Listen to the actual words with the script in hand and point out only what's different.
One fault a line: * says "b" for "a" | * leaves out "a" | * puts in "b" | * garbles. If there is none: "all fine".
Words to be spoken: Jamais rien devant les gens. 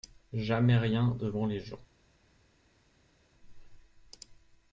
all fine